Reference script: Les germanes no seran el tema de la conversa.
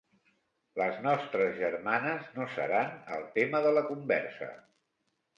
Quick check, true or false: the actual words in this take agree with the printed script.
false